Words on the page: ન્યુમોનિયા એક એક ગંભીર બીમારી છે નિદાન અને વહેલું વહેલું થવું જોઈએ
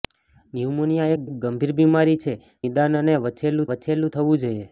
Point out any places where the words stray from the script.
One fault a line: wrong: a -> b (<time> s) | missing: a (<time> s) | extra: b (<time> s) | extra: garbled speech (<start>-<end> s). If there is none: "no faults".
no faults